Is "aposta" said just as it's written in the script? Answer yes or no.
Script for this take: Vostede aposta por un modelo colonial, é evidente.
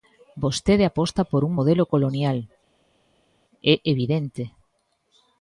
yes